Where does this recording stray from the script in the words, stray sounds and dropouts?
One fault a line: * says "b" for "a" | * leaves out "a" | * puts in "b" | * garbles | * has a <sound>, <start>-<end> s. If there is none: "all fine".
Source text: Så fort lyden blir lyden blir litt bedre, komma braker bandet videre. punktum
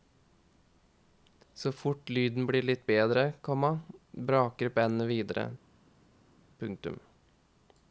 * leaves out "lyden blir"